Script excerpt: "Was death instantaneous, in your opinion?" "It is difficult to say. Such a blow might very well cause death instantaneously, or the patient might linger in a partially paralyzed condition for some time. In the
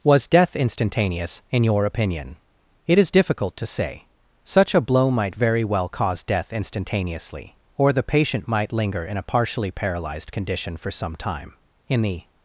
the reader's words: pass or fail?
pass